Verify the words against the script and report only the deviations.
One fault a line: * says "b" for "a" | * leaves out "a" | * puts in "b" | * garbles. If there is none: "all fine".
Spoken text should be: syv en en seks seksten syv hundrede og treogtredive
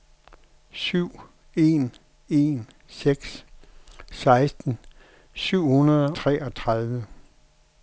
* leaves out "og"